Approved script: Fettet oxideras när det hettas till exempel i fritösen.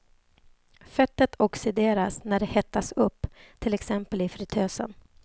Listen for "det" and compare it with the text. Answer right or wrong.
right